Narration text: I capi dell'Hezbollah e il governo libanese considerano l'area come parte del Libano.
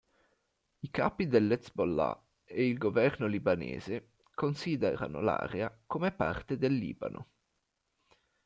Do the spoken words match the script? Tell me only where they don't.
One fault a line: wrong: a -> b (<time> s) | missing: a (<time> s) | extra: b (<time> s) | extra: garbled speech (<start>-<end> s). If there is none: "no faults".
no faults